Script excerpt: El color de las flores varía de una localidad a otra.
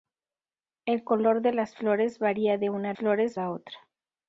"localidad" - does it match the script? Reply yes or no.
no